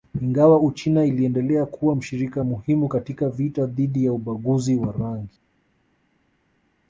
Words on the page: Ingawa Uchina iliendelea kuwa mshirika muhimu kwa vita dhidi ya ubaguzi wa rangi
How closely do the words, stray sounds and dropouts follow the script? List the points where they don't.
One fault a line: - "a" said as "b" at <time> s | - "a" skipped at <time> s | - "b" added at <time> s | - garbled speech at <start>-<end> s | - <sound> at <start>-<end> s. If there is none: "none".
- "kwa" said as "katika" at 2.9 s